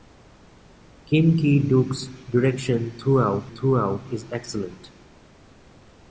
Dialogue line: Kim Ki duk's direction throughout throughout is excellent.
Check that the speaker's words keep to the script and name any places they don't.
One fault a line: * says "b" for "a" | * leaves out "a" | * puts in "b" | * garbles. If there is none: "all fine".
all fine